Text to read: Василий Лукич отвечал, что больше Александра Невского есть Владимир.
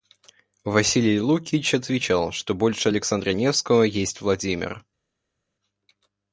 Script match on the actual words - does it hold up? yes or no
yes